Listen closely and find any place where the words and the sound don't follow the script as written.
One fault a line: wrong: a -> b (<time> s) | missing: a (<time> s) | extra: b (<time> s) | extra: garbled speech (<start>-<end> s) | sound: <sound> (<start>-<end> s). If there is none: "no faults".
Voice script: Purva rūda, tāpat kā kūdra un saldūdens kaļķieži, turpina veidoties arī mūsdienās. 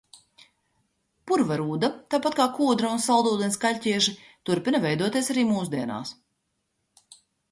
no faults